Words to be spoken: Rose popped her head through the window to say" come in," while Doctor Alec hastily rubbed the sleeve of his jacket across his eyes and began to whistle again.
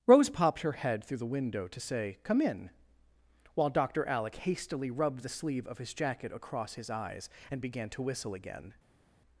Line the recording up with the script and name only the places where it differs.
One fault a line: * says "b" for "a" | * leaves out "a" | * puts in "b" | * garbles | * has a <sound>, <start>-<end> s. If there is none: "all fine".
all fine